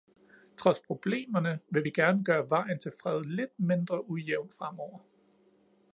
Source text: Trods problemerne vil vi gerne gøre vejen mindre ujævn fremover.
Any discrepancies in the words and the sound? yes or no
yes